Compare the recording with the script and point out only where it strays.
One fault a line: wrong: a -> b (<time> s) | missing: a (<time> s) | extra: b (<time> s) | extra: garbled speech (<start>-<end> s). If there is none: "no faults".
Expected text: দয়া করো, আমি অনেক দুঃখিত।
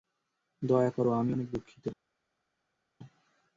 no faults